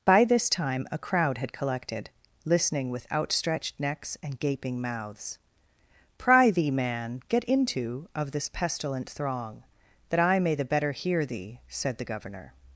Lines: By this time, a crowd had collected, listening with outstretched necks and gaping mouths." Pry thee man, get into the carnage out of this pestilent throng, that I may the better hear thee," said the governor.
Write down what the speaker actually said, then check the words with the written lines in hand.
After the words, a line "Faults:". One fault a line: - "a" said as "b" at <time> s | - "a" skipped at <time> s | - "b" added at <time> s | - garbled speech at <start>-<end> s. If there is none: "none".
By this time, a crowd had collected, listening with outstretched necks and gaping mouths." Pry thee man, get into of this pestilent throng, that I may the better hear thee," said the governor.
Faults:
- "the carnage out" skipped at 8.1 s